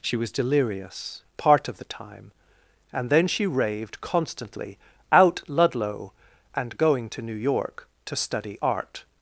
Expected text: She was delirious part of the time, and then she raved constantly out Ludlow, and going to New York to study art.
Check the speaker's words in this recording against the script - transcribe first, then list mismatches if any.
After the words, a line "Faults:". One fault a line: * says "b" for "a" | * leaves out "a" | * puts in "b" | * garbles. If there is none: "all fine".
She was delirious part of the time, and then she raved constantly out Ludlow, and going to New York to study art.
Faults:
all fine